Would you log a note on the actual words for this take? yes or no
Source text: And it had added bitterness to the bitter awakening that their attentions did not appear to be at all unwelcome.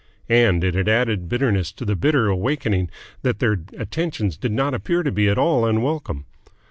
no